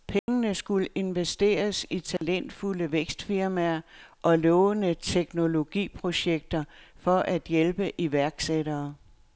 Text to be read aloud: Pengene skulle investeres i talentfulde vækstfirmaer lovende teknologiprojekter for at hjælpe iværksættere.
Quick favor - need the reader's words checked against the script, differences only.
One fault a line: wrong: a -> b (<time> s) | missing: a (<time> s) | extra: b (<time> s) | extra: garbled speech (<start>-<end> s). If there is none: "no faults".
extra: og (4.2 s)